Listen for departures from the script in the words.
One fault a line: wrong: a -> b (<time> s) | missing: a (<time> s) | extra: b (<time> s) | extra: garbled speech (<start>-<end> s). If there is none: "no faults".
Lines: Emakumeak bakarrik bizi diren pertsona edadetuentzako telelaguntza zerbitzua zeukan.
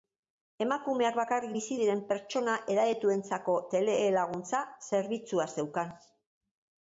no faults